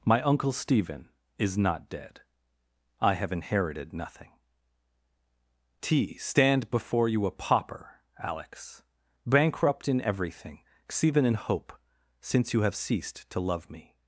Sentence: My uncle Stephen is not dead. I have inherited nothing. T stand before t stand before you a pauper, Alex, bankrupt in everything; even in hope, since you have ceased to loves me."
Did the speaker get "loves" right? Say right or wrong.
wrong